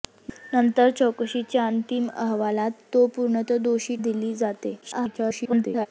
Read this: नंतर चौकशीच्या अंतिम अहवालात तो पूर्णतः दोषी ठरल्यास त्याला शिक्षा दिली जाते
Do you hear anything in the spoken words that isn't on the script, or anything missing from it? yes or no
yes